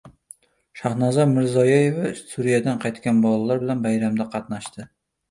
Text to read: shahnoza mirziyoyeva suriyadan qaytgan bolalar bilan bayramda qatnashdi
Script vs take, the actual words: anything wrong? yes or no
no